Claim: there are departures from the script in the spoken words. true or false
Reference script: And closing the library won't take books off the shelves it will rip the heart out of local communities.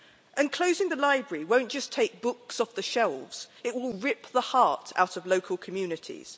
true